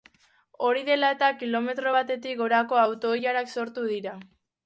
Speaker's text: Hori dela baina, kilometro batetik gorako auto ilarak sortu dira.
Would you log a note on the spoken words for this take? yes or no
yes